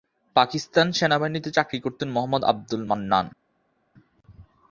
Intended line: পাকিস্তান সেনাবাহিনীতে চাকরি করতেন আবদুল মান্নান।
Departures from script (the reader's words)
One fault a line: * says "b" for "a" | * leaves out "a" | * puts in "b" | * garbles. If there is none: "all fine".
* puts in "মোহাম্মদ"